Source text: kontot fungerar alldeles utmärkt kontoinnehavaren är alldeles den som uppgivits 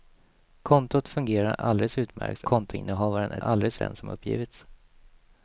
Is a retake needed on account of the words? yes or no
no